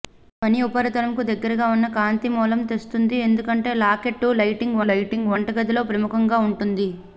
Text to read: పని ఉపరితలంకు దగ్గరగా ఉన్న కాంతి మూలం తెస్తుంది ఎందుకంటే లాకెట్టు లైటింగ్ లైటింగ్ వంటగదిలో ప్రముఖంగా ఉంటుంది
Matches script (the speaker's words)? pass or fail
pass